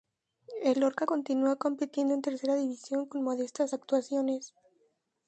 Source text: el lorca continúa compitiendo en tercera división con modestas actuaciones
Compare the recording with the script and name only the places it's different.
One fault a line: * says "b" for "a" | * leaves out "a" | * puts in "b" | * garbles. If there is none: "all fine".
all fine